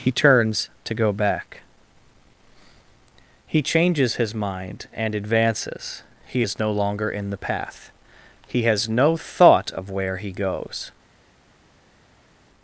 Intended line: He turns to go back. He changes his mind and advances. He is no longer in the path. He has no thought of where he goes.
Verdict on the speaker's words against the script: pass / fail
pass